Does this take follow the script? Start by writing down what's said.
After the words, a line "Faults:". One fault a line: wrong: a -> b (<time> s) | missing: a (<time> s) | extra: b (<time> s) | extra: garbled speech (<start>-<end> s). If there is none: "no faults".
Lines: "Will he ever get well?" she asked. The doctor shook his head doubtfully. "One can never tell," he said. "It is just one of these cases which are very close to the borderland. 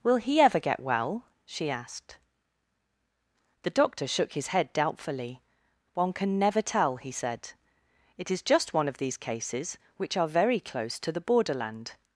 "Will he ever get well?" she asked. The doctor shook his head doubtfully. "One can never tell," he said. "It is just one of these cases which are very close to the borderland.
Faults:
no faults